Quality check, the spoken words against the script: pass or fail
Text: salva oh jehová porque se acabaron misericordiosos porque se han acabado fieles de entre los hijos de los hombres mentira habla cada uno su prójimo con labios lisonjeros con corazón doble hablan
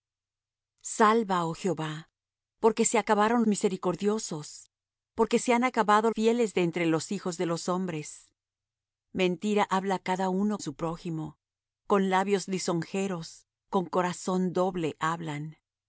pass